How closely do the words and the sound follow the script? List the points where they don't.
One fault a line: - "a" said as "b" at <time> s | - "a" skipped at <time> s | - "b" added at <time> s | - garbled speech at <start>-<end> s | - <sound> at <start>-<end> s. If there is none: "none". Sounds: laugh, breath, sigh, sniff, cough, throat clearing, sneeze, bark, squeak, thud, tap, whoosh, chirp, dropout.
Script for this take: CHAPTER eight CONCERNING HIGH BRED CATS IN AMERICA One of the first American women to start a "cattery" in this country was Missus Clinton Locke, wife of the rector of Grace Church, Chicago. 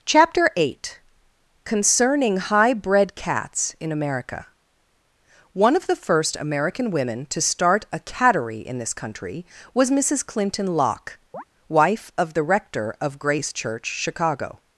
- chirp at 11.3-11.4 s